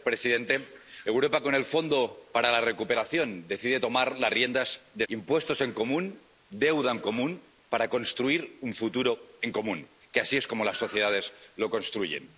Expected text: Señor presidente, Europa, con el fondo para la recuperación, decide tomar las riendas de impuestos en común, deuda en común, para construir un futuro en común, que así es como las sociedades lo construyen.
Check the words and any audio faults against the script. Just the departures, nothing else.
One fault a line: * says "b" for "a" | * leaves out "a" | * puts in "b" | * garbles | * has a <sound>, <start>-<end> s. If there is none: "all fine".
all fine